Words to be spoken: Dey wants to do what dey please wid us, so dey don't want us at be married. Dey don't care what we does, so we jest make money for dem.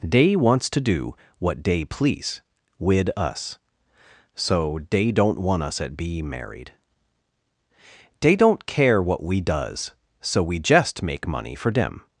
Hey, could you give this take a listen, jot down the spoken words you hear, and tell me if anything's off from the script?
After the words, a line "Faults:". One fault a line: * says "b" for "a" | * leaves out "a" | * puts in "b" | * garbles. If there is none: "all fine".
Dey wants to do what dey please wid us, so dey don't want us at be married. Dey don't care what we does, so we jest make money for dem.
Faults:
all fine